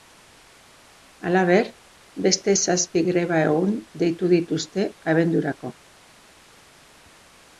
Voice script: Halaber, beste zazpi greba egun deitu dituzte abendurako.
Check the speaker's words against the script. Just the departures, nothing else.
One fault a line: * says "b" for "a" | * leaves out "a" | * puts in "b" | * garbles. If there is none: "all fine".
all fine